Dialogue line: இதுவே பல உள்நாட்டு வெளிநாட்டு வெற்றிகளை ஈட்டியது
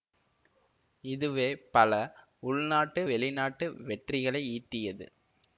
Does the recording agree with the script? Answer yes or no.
yes